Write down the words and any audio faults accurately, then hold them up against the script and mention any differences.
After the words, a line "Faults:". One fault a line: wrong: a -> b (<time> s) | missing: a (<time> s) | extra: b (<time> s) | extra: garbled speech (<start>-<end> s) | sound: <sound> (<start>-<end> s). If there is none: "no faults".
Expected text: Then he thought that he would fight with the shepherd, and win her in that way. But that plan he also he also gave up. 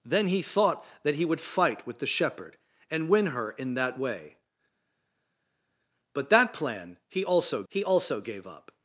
Then he thought that he would fight with the shepherd, and win her in that way. But that plan he also he also gave up.
Faults:
no faults